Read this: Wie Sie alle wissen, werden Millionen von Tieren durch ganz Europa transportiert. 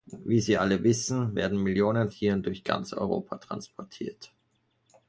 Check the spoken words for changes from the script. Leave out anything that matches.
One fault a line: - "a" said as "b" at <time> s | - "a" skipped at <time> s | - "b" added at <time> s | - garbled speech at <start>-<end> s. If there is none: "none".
- "von" skipped at 2.1 s